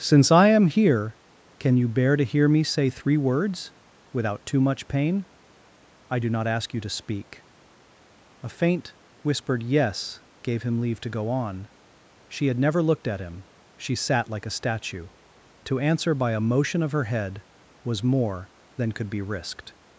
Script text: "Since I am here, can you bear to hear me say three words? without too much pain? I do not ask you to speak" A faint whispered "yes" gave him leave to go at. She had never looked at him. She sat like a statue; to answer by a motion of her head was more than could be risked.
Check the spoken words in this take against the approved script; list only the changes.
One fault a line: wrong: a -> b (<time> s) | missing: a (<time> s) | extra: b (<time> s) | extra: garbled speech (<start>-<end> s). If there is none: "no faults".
wrong: at -> on (11.3 s)